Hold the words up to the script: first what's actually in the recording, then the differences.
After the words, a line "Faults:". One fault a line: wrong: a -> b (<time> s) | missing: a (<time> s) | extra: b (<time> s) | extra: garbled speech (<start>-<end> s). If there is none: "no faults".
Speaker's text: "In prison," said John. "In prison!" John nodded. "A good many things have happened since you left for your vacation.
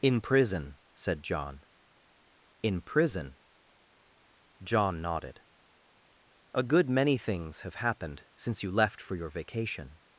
"In prison," said John. "In prison!" John nodded. "A good many things have happened since you left for your vacation.
Faults:
no faults